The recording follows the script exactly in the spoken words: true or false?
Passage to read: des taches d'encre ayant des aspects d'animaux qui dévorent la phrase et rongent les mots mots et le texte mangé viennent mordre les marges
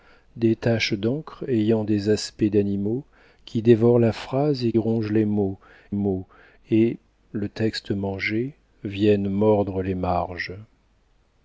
true